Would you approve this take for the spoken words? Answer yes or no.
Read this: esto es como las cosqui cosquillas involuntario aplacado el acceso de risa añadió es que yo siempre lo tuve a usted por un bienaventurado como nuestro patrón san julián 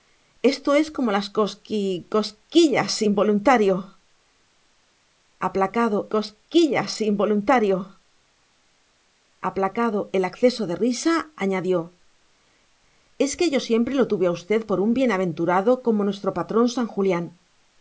no